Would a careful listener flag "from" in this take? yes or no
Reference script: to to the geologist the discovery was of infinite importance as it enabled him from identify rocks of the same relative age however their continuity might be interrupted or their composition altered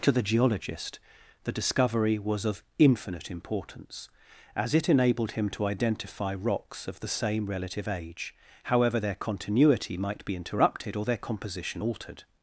yes